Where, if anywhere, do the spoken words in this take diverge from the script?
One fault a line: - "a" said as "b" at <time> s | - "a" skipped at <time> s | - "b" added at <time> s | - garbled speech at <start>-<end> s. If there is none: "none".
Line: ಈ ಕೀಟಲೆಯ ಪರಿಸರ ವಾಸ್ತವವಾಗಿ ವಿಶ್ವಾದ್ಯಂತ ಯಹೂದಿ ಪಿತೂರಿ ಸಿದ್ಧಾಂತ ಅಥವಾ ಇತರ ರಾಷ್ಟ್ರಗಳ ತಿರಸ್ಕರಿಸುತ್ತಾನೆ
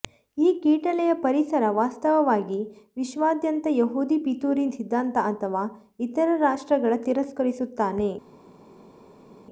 none